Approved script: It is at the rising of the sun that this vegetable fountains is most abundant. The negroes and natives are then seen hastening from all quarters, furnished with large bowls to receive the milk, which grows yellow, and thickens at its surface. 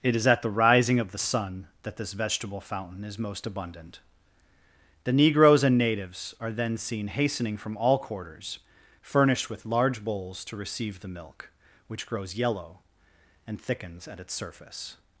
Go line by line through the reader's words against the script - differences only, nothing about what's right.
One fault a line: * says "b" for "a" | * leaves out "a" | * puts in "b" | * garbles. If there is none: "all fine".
* says "fountain" for "fountains"